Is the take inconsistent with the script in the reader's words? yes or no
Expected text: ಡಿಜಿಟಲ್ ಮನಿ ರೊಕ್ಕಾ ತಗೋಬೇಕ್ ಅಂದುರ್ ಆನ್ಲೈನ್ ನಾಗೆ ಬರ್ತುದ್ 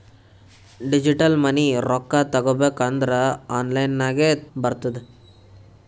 no